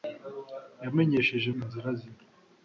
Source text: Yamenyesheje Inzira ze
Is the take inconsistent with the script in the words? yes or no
no